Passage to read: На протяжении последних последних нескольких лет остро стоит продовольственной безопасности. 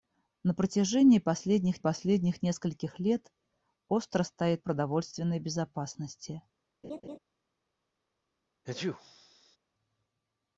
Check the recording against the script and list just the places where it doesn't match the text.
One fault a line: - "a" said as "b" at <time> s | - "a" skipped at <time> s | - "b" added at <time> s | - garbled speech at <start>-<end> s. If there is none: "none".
none